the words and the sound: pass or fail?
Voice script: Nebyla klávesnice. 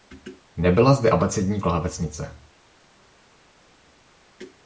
fail